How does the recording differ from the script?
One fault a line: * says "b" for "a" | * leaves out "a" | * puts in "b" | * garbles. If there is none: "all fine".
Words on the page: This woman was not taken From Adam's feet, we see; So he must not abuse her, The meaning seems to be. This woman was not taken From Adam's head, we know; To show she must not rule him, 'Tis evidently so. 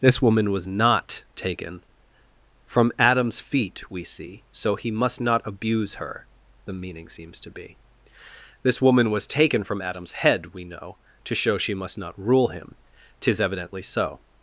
* leaves out "not"